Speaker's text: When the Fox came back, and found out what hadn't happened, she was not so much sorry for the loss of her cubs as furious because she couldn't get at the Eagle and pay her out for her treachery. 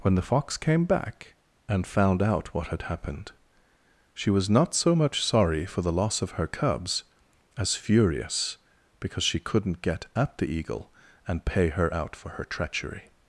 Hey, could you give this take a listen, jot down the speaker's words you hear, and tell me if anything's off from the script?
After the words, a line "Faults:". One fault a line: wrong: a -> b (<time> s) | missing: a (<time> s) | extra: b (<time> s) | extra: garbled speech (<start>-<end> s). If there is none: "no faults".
When the Fox came back, and found out what had happened, she was not so much sorry for the loss of her cubs as furious because she couldn't get at the Eagle and pay her out for her treachery.
Faults:
wrong: hadn't -> had (2.7 s)